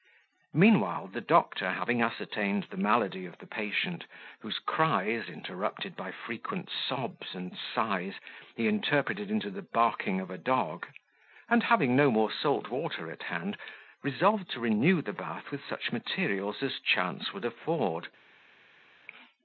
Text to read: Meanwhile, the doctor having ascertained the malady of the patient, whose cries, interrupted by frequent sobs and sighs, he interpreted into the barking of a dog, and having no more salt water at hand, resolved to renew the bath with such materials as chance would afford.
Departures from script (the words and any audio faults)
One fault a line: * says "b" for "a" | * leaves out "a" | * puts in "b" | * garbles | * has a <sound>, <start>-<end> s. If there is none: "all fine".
all fine